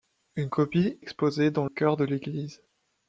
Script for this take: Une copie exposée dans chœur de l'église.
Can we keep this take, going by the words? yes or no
yes